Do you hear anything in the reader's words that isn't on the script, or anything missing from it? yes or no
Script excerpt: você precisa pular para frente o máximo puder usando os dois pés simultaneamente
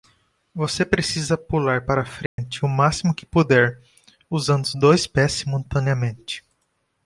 yes